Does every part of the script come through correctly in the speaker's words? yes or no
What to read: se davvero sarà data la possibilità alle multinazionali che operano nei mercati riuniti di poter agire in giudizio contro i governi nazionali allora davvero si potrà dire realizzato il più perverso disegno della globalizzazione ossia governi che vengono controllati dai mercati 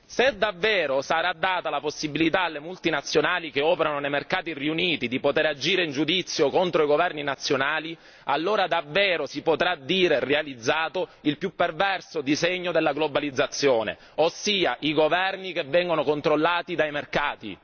no